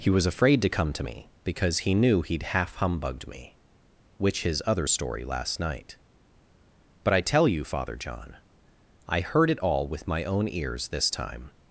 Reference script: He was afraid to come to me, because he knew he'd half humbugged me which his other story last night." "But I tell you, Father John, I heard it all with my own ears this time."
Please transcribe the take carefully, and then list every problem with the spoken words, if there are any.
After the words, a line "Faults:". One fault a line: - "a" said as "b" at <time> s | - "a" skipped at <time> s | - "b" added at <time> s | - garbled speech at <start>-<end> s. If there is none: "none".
He was afraid to come to me, because he knew he'd half humbugged me which his other story last night." "But I tell you, Father John, I heard it all with my own ears this time."
Faults:
none